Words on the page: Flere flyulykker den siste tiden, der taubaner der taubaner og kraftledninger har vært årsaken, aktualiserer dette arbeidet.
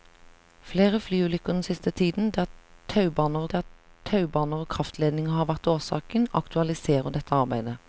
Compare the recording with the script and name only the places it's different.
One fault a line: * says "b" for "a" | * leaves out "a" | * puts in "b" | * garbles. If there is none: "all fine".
all fine